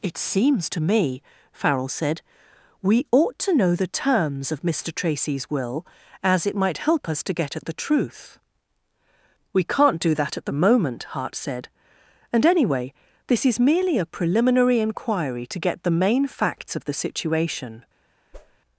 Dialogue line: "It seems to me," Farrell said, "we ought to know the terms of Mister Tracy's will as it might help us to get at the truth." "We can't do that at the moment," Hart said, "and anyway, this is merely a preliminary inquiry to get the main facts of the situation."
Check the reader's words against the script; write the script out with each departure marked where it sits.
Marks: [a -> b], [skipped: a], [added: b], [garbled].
"It seems to me," Farrell said, "we ought to know the terms of Mister Tracy's will as it might help us to get at the truth." "We can't do that at the moment," Hart said, "and anyway, this is merely a preliminary inquiry to get the main facts of the situation."